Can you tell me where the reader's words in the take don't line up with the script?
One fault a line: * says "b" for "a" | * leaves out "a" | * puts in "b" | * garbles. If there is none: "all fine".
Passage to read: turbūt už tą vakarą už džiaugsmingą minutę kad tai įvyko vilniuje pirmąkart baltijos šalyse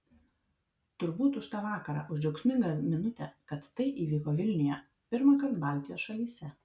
all fine